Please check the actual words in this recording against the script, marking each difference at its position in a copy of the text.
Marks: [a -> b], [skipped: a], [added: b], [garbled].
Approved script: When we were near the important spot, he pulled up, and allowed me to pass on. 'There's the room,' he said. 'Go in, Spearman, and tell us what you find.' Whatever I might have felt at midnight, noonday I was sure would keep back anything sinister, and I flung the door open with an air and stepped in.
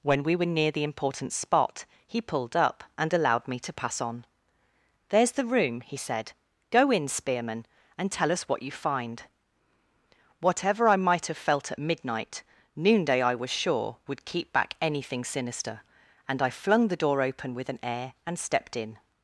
When we were near the important spot, he pulled up, and allowed me to pass on. 'There's the room,' he said. 'Go in, Spearman, and tell us what you find.' Whatever I might have felt at midnight, noonday I was sure would keep back anything sinister, and I flung the door open with an air and stepped in.